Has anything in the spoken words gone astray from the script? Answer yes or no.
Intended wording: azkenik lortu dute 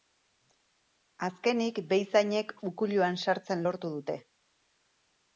yes